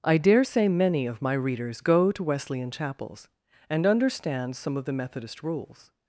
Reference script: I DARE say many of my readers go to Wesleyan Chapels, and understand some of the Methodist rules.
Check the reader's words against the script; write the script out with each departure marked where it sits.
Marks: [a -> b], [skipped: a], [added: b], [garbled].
I DARE say many of my readers go to Wesleyan Chapels, and understand some of the Methodist rules.